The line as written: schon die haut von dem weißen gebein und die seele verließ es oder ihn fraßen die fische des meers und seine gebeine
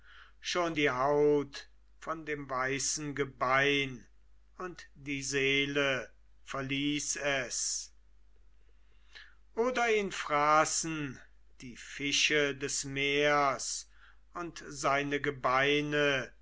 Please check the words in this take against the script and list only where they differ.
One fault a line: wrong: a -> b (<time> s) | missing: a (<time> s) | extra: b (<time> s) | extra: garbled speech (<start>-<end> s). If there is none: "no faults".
no faults